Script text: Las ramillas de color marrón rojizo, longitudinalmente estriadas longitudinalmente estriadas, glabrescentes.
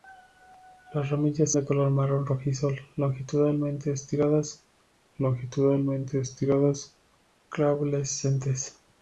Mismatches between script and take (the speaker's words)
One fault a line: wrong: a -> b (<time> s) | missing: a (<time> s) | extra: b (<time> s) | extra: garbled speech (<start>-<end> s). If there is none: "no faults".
no faults